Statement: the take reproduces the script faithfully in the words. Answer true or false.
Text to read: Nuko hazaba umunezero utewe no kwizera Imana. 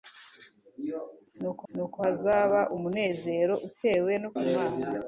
false